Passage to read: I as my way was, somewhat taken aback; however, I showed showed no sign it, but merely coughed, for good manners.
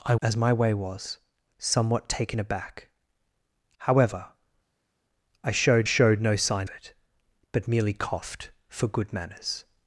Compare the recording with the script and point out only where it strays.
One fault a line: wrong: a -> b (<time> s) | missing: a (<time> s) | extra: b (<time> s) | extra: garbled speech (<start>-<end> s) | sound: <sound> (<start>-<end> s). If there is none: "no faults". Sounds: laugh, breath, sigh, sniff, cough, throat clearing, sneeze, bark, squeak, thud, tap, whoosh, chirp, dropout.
no faults